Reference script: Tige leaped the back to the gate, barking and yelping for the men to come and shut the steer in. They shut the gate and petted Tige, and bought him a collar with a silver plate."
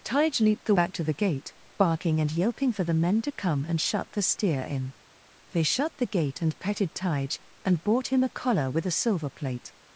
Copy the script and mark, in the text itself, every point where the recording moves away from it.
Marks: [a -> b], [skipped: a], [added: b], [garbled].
Tige leaped the back to the gate, barking and yelping for the men to come and shut the steer in. They shut the gate and petted Tige, and bought him a collar with a silver plate."